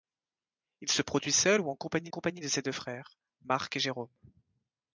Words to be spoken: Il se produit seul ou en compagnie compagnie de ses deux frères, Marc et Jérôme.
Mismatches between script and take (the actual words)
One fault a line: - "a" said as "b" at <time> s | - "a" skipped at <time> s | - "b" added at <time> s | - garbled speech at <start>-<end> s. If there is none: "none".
none